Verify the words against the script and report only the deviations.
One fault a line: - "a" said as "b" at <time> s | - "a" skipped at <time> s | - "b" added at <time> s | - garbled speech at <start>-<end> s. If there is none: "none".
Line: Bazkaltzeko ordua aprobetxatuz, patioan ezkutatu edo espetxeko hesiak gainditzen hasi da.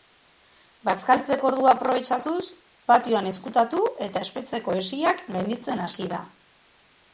- "edo" said as "eta" at 4.1 s